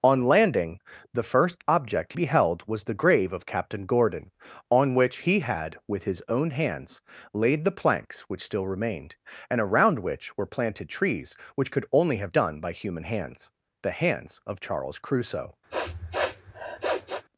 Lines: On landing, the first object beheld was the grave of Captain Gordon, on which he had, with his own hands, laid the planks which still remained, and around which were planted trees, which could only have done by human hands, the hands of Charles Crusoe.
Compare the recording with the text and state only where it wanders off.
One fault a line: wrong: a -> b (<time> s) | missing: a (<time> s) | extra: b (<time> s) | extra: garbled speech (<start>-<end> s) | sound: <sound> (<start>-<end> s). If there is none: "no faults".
sound: sniff (15.7-17.2 s)